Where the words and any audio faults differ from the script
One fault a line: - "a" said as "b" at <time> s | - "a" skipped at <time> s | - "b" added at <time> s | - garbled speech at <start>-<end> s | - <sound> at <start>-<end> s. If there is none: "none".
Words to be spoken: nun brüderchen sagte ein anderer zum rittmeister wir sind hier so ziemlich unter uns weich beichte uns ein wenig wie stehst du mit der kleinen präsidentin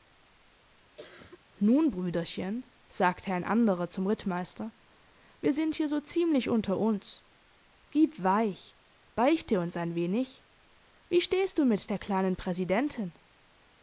- cough at 1.0-1.4 s
- "gib" added at 7.9 s